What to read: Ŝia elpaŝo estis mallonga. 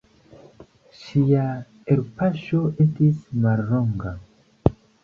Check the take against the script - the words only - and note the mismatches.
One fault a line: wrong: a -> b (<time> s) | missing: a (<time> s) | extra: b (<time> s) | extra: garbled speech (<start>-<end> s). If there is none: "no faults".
no faults